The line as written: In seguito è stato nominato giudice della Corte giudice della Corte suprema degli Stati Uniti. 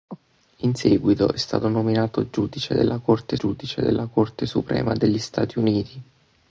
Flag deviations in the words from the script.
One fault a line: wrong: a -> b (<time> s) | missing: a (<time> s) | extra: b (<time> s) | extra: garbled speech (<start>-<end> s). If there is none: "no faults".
no faults